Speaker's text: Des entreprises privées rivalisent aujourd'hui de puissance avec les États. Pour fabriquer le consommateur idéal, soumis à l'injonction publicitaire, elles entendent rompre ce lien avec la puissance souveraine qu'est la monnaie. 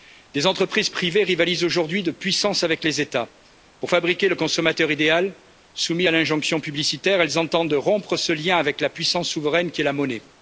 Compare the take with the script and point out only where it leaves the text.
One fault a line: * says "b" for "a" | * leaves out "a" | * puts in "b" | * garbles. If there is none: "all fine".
all fine